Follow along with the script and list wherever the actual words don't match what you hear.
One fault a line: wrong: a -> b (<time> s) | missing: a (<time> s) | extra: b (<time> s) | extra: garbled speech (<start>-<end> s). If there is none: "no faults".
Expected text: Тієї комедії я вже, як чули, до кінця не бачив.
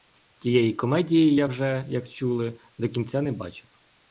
no faults